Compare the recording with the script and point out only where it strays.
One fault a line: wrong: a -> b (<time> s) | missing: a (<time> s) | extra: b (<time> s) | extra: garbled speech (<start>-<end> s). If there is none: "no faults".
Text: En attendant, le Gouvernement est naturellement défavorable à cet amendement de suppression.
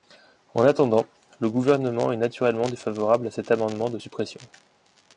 no faults